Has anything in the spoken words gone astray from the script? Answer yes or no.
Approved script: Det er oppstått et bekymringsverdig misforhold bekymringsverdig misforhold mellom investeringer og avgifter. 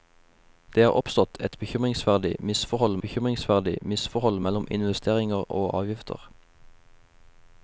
no